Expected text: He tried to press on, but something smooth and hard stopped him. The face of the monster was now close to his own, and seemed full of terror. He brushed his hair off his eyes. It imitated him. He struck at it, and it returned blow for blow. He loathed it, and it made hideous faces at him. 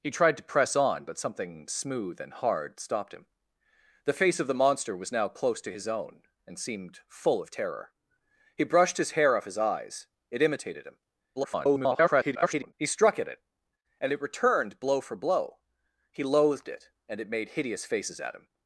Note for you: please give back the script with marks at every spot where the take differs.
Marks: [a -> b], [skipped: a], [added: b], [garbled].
He tried to press on, but something smooth and hard stopped him. The face of the monster was now close to his own, and seemed full of terror. He brushed his hair off his eyes. It imitated him. [garbled] He struck at it, and it returned blow for blow. He loathed it, and it made hideous faces at him.